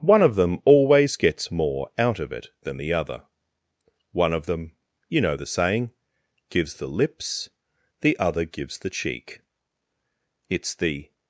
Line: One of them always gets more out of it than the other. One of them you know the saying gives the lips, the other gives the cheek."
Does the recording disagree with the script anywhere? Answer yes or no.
yes